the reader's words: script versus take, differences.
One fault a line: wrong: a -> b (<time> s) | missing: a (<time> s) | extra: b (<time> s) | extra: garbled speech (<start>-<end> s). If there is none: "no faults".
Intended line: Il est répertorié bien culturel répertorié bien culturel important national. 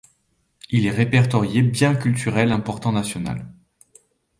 missing: répertorié bien culturel (2.5 s)